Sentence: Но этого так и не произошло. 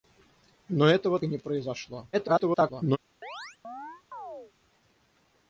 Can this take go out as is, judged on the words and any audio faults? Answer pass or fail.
fail